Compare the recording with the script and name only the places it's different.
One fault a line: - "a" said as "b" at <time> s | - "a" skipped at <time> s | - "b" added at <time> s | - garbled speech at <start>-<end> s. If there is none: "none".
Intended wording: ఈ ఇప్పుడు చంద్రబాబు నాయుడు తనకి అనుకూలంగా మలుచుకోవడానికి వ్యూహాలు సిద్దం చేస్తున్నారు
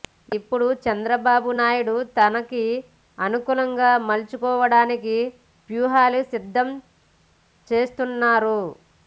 none